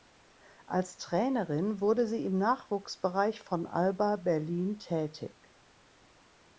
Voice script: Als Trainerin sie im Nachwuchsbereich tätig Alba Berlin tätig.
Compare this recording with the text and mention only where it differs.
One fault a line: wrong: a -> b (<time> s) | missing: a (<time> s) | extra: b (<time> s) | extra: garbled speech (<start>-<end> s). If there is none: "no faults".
extra: wurde (1.8 s)
wrong: tätig -> von (3.4 s)